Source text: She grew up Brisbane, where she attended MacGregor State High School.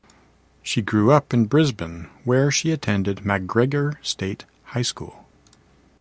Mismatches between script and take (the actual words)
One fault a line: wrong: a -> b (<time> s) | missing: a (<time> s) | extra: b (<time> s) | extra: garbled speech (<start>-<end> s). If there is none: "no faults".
extra: in (1.3 s)